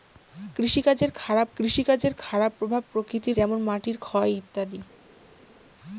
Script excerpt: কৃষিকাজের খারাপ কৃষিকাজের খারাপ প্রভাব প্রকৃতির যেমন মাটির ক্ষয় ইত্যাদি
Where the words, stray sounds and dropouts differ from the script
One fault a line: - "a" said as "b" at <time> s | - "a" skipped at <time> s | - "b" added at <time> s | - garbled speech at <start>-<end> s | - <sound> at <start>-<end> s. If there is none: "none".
none